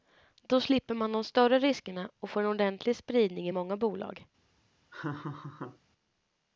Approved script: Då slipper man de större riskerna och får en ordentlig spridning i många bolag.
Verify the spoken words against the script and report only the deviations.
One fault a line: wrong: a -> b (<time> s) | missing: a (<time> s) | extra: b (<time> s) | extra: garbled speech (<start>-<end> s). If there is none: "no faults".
no faults